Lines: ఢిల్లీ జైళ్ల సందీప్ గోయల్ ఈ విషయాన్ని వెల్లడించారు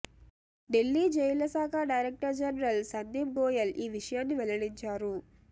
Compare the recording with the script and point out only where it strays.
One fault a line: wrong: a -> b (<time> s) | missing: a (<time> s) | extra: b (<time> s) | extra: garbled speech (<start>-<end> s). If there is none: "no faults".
extra: శాఖ డైరెక్టర్ జనరల్ (1.5 s)